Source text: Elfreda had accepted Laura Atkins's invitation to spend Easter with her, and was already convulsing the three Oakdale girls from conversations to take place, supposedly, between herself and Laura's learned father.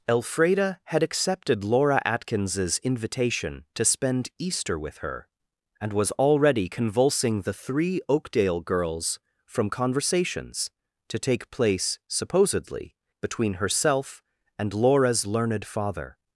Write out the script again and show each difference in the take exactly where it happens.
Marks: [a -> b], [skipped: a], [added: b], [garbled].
Elfreda had accepted Laura Atkins's invitation to spend Easter with her, and was already convulsing the three Oakdale girls from conversations to take place, supposedly, between herself and Laura's learned father.